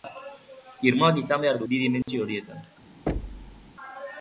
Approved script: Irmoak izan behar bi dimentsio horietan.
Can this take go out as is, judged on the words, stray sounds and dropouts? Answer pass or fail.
fail